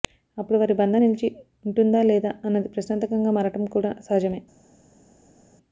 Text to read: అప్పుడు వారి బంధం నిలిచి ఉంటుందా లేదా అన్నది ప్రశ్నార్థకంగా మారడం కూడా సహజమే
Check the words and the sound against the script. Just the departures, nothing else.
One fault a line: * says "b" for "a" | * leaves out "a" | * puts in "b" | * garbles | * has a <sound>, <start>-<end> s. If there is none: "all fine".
all fine